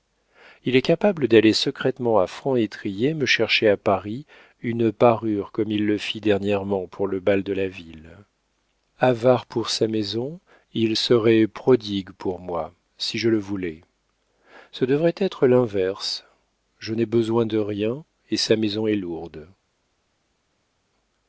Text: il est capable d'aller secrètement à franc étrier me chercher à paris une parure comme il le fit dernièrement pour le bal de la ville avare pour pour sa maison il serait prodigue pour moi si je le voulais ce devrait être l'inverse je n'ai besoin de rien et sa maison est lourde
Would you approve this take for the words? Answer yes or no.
no